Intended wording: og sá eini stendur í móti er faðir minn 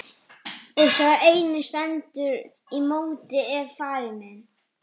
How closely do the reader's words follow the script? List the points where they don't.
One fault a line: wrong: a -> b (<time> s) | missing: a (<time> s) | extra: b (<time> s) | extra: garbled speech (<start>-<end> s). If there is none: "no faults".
no faults